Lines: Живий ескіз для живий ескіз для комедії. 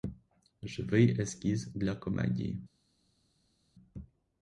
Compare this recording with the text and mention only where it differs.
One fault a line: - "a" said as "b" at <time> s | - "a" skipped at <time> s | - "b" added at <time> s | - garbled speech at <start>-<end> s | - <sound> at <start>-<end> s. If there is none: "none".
- "живий ескіз для" skipped at 1.9 s